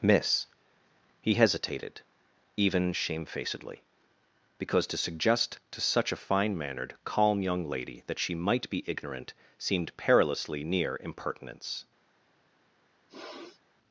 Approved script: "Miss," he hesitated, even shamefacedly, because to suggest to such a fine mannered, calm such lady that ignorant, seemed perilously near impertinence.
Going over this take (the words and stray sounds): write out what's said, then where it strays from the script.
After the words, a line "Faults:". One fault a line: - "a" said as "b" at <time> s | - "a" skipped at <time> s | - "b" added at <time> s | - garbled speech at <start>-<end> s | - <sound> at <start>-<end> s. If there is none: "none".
"Miss," he hesitated, even shamefacedly, because to suggest to such a fine mannered, calm young lady that she might be ignorant, seemed perilously near impertinence.
Faults:
- "such" said as "young" at 7.4 s
- "she might be" added at 8.2 s
- sniff at 13.1-13.6 s